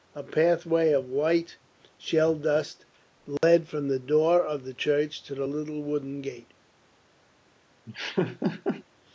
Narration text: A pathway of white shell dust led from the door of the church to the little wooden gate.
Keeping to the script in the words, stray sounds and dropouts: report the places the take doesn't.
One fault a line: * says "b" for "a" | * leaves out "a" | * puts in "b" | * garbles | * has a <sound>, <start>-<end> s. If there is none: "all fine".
* has a dropout, 3.4-3.4 s
* has a laugh, 7.9-8.8 s